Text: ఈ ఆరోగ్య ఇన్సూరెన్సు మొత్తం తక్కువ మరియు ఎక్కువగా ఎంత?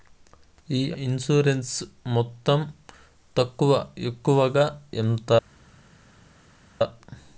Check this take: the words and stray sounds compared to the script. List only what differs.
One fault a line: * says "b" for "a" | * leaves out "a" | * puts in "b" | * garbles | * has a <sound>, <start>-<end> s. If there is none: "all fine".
* leaves out "ఆరోగ్య"
* leaves out "మరియు"